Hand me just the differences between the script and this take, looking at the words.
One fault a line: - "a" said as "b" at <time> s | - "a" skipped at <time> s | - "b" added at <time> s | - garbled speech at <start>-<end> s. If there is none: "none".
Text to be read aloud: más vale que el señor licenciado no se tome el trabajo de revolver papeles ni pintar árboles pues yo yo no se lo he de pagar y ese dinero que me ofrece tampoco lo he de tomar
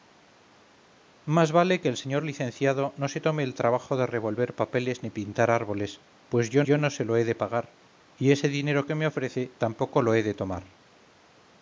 none